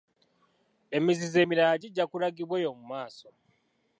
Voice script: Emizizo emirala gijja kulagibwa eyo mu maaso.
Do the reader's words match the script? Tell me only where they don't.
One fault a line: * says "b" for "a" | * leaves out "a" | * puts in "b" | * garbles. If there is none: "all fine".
all fine